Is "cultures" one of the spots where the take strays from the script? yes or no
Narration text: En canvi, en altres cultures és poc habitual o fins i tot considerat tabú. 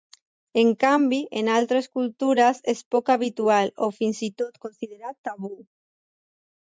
no